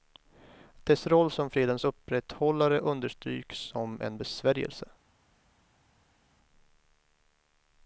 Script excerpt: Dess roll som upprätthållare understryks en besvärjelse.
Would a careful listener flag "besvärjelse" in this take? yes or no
no